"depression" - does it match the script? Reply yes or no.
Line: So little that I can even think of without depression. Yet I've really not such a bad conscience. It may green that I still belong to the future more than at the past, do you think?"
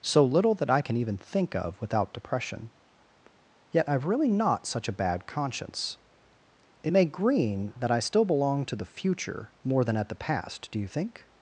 yes